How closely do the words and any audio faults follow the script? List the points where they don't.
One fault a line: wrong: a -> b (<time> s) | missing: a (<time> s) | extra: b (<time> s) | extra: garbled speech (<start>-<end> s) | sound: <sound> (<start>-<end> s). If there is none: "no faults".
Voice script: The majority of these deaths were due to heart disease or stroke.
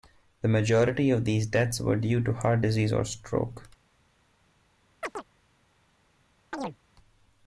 sound: chirp (5.0-5.2 s)
sound: chirp (6.5-6.8 s)